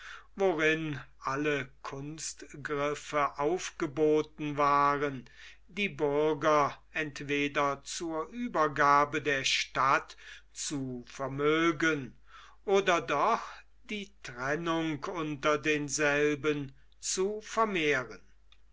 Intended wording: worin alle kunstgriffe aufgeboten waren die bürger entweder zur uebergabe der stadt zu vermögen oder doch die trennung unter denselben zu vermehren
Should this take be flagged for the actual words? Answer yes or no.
no